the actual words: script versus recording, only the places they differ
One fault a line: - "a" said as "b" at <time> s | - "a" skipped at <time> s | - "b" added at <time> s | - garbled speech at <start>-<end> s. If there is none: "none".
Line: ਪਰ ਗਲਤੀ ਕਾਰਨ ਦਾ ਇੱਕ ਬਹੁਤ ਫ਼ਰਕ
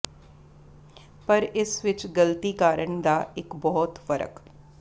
- "ਇਸ ਵਿਚ" added at 1.4 s